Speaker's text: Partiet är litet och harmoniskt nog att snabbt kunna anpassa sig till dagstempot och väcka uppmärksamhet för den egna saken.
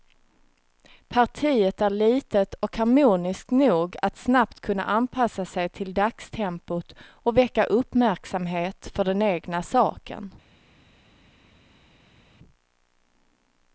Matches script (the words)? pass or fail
pass